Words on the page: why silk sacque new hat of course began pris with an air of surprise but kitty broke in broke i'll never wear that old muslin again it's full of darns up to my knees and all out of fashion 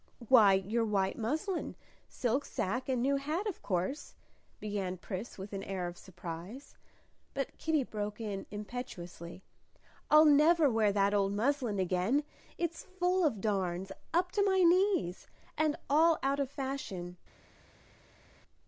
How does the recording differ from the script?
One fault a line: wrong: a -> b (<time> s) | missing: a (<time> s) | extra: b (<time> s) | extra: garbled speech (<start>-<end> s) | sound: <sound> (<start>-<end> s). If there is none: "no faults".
extra: your white muslin (0.6 s)
extra: and (2.9 s)
wrong: broke -> impetuously (8.5 s)